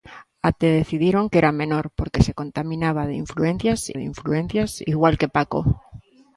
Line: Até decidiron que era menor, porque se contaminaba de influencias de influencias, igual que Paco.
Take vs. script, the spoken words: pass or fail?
pass